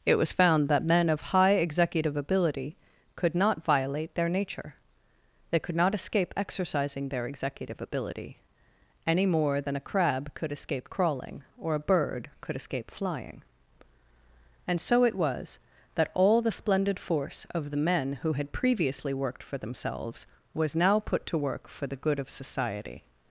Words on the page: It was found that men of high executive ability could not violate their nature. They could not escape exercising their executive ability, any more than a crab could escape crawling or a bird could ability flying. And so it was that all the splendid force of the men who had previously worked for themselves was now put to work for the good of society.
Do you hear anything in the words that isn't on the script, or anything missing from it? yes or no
yes